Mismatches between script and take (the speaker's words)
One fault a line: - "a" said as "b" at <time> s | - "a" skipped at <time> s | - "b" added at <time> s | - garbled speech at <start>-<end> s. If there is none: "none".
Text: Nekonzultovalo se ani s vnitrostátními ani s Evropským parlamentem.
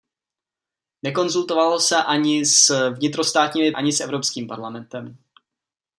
none